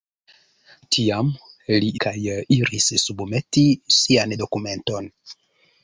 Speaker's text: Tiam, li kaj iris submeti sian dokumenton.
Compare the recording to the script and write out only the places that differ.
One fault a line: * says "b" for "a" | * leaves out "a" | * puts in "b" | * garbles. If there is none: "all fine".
all fine